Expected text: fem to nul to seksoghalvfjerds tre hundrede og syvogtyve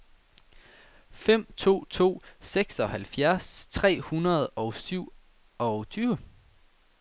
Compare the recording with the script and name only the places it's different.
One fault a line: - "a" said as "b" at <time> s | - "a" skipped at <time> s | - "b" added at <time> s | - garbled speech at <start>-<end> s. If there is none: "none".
- "nul" skipped at 1.8 s